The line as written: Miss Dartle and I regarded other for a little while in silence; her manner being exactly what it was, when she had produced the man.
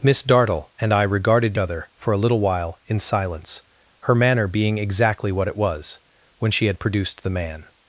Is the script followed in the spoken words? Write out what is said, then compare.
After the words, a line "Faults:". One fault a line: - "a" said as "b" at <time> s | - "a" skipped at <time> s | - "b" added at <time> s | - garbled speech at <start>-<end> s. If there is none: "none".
Miss Dartle and I regarded other for a little while in silence; her manner being exactly what it was, when she had produced the man.
Faults:
none